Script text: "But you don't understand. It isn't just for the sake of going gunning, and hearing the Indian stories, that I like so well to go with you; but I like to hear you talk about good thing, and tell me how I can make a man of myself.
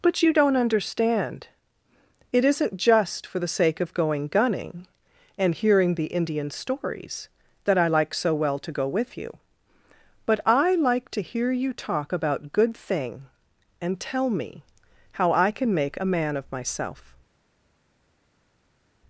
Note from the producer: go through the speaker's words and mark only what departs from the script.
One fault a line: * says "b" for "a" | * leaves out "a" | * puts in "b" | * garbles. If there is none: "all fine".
all fine